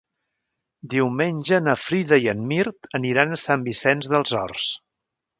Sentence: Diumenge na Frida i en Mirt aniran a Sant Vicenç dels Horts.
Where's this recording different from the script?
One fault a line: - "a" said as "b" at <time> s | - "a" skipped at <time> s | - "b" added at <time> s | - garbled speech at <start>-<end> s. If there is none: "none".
none